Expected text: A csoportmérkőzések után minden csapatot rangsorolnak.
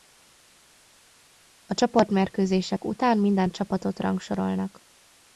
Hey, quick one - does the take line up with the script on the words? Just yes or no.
yes